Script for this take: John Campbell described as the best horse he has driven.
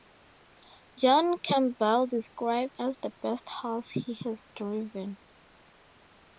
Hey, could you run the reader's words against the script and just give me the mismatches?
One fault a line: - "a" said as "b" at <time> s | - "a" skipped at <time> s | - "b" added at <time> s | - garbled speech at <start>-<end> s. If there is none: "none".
none